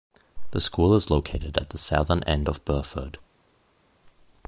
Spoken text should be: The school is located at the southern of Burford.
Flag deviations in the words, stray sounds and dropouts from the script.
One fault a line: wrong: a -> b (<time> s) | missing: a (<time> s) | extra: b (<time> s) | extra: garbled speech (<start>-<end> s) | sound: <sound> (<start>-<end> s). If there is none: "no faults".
extra: end (2.2 s)